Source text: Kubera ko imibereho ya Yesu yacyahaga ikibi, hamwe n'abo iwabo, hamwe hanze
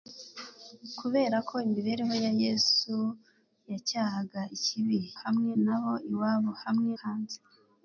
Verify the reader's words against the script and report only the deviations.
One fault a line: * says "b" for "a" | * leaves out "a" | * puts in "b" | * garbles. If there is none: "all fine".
all fine